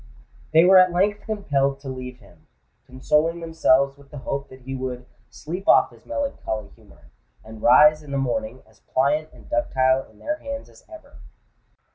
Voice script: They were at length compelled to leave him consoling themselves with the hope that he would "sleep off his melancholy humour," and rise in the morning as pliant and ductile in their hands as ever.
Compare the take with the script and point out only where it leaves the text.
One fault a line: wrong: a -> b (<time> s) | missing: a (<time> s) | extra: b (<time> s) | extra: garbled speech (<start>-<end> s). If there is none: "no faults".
no faults